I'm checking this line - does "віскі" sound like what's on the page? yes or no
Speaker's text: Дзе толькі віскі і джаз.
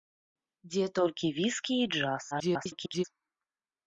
yes